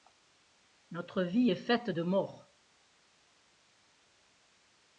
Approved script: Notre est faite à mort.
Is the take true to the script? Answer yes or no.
no